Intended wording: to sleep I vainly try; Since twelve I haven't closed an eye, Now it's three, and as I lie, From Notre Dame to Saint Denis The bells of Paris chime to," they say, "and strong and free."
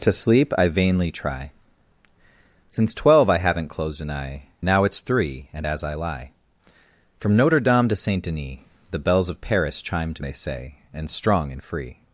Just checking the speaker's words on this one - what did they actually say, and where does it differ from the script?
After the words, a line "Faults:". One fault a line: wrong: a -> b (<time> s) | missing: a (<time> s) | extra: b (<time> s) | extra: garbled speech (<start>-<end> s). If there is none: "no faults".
to sleep I vainly try; Since twelve I haven't closed an eye, Now it's three, and as I lie, From Notre Dame to Saint Denis The bells of Paris chime to," they say, "and strong and free."
Faults:
no faults